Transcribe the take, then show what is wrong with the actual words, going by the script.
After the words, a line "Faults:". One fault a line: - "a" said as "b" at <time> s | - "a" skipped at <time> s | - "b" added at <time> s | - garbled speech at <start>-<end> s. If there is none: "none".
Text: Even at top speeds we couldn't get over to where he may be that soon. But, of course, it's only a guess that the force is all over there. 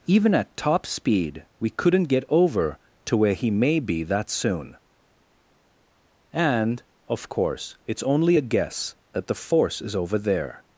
Even at top speed we couldn't get over to where he may be that soon. And, of course, it's only a guess that the force is over there.
Faults:
- "speeds" said as "speed" at 0.8 s
- "But" said as "And" at 6.3 s
- "all" skipped at 9.9 s